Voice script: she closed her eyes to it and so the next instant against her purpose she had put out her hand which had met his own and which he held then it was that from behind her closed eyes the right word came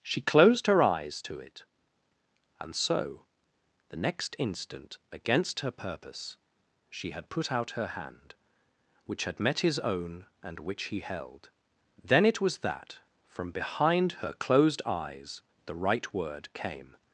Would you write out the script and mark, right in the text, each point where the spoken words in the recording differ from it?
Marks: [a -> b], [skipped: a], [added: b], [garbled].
she closed her eyes to it and so the next instant against her purpose she had put out her hand which had met his own and which he held then it was that from behind her closed eyes the right word came